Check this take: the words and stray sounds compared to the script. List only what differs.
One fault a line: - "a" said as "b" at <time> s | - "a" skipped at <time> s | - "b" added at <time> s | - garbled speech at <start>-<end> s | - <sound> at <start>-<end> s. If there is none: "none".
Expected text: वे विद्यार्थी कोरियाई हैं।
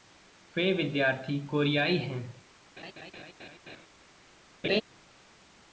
- laugh at 2.8-3.9 s
- laugh at 4.6-4.8 s